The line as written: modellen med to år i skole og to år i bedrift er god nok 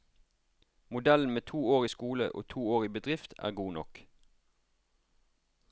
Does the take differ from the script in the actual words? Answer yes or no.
no